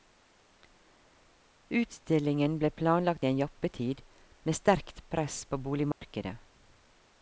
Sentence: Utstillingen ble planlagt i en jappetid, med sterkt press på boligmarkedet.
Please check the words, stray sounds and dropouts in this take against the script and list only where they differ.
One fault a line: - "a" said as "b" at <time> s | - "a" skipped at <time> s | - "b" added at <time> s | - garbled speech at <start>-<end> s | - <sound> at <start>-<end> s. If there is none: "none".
- dropout at 5.9-6.0 s